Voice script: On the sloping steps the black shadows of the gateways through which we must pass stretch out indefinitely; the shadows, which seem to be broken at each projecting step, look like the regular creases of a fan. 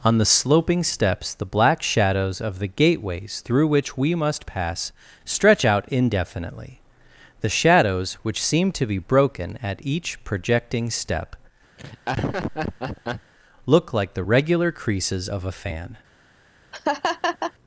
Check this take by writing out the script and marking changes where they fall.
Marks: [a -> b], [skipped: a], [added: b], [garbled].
On the sloping steps the black shadows of the gateways through which we must pass stretch out indefinitely; the shadows, which seem to be broken at each projecting step, look like the regular creases of a fan.